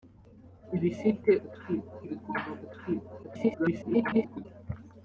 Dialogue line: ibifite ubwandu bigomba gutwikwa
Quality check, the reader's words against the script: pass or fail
fail